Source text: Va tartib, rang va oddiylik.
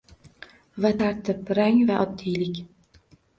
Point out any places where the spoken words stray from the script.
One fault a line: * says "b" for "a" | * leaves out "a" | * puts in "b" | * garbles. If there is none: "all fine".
all fine